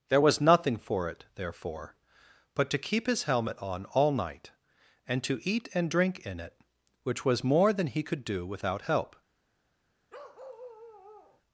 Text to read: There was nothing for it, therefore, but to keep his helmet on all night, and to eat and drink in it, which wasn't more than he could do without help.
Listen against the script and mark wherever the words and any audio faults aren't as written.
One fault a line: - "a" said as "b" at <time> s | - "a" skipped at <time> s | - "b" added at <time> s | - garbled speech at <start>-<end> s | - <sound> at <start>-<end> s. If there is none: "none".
- "wasn't" said as "was" at 7.2 s
- bark at 10.1-11.4 s